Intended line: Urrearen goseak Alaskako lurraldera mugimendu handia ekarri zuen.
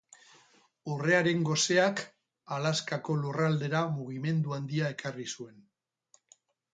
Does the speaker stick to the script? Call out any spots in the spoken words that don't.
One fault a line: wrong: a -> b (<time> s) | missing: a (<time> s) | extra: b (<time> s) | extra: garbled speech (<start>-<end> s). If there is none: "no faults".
no faults